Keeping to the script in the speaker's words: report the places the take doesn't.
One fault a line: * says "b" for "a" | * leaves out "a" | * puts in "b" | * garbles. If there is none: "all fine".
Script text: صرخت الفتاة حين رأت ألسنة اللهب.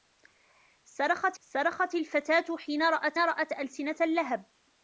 * puts in "صرخت"
* puts in "رأت"